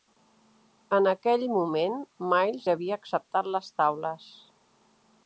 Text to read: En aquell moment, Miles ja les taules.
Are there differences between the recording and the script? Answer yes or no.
yes